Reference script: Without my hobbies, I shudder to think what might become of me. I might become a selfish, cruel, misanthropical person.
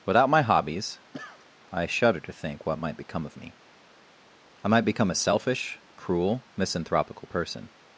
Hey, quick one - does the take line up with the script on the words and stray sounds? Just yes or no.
no